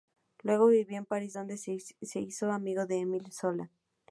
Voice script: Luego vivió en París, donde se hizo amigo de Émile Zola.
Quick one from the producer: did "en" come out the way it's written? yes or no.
yes